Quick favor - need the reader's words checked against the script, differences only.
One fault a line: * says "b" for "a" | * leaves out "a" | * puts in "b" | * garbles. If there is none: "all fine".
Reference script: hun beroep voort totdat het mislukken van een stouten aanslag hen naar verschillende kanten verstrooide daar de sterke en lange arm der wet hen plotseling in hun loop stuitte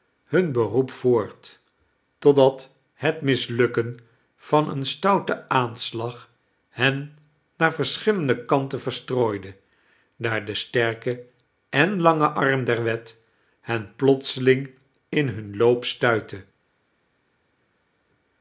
all fine